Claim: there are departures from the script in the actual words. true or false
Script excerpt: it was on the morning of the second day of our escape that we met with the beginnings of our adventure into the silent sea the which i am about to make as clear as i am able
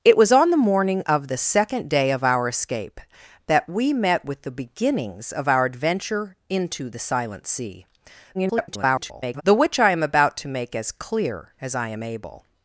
true